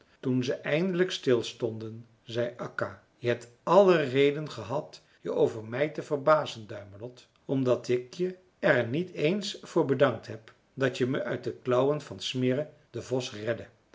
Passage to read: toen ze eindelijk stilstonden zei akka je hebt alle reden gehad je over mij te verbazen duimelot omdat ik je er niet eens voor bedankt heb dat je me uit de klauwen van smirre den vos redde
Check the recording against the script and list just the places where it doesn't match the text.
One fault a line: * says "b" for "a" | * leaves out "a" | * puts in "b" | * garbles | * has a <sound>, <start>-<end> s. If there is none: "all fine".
all fine